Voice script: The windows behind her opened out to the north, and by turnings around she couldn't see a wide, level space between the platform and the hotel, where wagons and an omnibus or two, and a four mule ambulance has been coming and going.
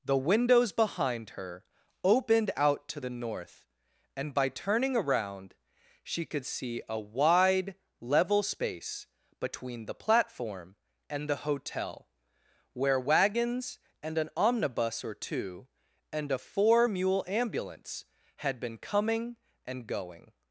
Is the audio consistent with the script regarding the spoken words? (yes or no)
no